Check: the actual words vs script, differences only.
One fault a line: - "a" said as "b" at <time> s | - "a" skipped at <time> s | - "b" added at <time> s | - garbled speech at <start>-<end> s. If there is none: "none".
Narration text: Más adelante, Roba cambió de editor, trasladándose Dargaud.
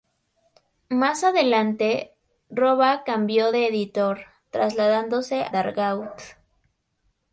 none